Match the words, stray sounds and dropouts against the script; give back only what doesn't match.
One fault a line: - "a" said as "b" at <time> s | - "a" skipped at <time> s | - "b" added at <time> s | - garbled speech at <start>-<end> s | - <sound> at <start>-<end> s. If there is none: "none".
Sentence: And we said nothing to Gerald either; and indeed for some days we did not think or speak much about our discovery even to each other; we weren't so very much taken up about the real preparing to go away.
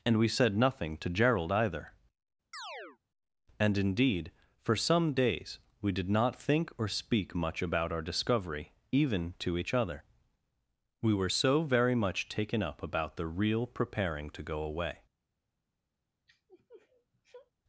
- chirp at 2.5-3.0 s
- "weren't" said as "were" at 11.1 s
- sniff at 16.3-17.5 s